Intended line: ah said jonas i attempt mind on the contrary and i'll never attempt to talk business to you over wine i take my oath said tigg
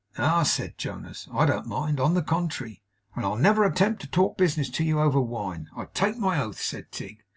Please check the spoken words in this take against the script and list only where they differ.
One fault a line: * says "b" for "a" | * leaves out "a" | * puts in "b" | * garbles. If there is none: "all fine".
* says "don't" for "attempt"